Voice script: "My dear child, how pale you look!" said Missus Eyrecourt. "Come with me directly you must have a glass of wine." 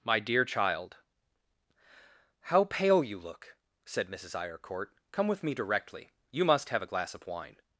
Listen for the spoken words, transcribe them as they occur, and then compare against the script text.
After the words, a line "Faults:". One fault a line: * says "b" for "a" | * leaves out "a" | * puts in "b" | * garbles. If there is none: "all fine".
"My dear child, how pale you look!" said Missus Eyrecourt. "Come with me directly you must have a glass of wine."
Faults:
all fine